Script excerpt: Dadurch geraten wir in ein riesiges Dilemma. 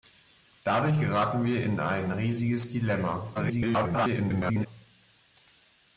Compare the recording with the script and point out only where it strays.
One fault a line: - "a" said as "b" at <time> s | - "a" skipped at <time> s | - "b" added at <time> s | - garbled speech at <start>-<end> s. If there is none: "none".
- garbled speech at 3.3-4.7 s